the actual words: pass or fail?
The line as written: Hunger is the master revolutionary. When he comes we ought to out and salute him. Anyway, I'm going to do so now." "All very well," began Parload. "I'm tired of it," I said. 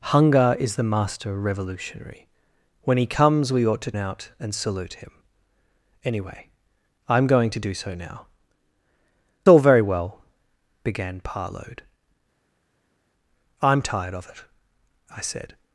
pass